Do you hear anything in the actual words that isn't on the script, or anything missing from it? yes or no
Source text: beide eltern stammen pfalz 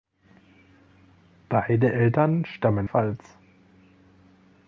no